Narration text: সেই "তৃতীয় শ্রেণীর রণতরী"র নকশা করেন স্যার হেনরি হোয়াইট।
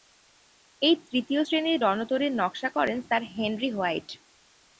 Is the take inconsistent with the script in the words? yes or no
yes